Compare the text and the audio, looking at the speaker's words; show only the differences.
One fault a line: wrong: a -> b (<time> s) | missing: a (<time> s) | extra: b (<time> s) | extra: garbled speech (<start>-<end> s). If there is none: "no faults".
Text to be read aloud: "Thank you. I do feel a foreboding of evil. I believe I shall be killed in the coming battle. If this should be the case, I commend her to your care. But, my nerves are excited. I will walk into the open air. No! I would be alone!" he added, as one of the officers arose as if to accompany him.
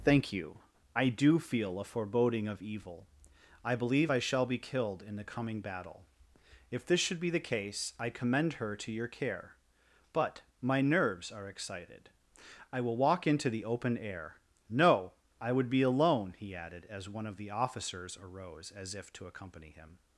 no faults